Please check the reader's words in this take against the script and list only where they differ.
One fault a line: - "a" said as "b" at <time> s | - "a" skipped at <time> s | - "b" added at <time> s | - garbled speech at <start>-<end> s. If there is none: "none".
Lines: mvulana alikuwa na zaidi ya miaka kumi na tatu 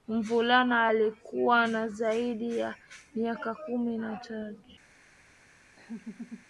none